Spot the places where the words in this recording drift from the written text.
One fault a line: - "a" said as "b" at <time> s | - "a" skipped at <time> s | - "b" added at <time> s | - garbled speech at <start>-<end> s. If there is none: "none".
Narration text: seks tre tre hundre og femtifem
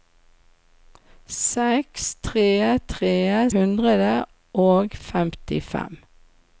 none